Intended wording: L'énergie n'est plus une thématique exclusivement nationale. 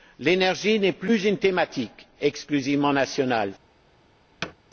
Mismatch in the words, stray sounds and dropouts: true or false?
true